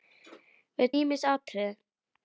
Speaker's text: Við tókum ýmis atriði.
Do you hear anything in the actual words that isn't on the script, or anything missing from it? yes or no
yes